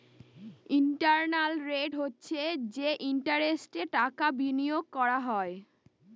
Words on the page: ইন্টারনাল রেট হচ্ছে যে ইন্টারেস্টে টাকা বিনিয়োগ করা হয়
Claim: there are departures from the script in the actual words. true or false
false